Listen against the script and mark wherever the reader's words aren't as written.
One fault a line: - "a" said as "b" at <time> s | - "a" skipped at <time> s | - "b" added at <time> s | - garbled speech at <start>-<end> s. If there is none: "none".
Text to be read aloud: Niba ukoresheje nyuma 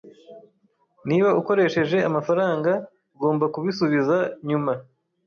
- "amafaranga ugomba kubisubiza" added at 2.1 s